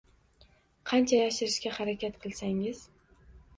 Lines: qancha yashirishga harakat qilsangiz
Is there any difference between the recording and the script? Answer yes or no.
no